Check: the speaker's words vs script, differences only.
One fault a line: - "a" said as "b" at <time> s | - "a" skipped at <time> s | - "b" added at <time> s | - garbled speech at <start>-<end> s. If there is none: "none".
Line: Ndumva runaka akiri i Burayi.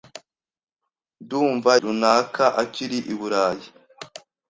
none